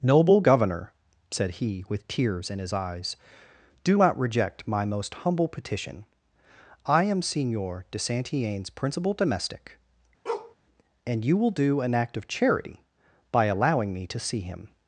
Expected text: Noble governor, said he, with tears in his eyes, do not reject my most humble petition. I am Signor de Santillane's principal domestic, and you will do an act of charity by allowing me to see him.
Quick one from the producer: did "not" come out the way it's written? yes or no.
yes